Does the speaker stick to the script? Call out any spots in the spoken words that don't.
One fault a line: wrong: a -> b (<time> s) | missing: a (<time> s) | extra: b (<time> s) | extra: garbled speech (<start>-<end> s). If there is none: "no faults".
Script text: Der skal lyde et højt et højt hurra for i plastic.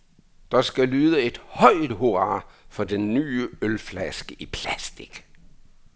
wrong: et højt hurra for -> hurra for den nye ølflaske (1.9 s)